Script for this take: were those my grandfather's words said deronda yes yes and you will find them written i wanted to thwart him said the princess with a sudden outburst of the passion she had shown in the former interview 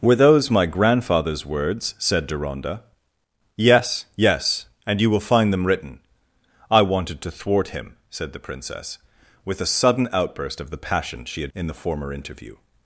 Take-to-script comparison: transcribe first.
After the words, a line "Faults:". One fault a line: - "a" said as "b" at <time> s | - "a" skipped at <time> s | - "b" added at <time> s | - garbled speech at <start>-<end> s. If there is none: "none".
were those my grandfather's words said deronda yes yes and you will find them written i wanted to thwart him said the princess with a sudden outburst of the passion she had in the former interview
Faults:
- "shown" skipped at 11.5 s